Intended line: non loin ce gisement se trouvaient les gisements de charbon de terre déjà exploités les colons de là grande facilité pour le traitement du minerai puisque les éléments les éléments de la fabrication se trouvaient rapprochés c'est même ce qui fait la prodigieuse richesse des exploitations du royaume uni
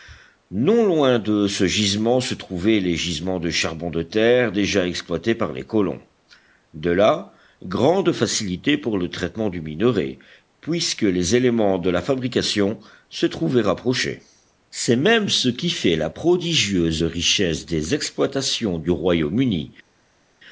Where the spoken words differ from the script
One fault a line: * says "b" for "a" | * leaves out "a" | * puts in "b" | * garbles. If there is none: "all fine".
* puts in "de"
* puts in "par"
* leaves out "les éléments"